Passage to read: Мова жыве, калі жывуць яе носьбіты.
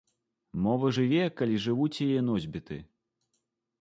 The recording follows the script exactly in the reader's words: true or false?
true